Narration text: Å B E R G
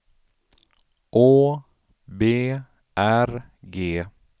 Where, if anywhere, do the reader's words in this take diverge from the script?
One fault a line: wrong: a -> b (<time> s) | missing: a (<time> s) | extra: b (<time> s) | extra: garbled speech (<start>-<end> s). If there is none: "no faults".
missing: E (2.6 s)